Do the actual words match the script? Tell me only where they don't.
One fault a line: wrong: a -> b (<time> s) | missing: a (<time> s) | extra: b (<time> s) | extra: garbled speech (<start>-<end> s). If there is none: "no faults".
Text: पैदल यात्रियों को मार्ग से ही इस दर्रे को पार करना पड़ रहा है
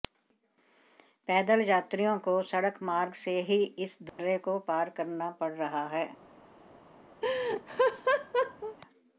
extra: सड़क (2.4 s)